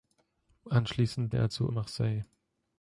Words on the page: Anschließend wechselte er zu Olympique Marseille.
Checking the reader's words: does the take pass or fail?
fail